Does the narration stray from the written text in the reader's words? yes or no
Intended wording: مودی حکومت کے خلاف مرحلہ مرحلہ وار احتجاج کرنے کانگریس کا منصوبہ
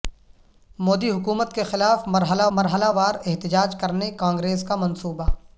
no